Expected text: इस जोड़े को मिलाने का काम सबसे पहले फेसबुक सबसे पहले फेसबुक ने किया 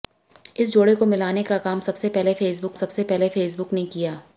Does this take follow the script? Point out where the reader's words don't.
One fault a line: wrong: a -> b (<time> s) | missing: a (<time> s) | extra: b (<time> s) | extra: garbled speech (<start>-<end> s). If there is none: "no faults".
no faults